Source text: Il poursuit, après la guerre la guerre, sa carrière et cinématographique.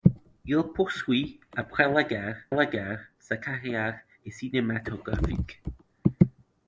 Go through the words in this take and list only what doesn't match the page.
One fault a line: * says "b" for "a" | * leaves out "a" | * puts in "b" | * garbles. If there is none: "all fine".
all fine